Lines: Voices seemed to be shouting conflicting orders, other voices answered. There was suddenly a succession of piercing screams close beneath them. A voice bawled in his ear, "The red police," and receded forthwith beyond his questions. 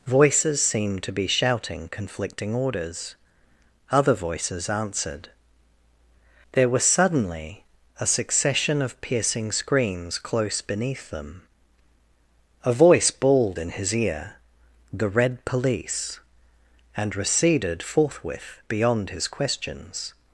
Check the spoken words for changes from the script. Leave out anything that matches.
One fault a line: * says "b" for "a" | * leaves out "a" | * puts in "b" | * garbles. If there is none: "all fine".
all fine